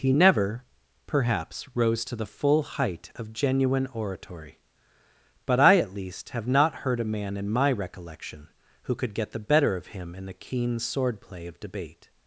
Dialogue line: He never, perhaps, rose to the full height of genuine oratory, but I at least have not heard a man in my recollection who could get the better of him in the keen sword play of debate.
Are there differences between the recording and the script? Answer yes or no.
no